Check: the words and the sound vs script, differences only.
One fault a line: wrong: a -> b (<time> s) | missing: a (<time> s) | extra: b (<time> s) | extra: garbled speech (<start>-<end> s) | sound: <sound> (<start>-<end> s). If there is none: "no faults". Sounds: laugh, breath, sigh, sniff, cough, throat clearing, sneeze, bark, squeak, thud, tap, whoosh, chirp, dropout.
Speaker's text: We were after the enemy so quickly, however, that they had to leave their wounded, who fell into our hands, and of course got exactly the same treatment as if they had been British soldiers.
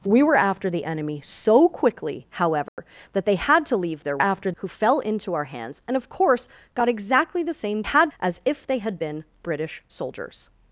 sound: dropout (2.7-2.8 s)
wrong: wounded -> after (4.2 s)
wrong: treatment -> had (7.8 s)